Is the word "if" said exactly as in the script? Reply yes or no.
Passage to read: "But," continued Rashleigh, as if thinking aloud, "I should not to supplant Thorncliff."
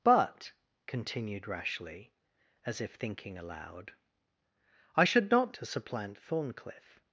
yes